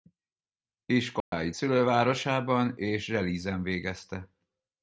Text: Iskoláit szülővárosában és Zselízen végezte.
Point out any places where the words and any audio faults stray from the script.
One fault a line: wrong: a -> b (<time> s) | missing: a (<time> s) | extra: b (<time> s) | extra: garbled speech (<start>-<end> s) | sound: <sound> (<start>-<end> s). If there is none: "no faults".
sound: dropout (1.2-1.3 s)